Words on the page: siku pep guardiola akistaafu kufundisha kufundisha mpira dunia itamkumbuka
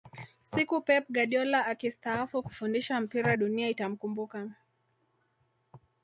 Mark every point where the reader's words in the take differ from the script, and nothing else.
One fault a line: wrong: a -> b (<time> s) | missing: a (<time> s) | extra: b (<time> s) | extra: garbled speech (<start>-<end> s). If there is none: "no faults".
missing: kufundisha (3.0 s)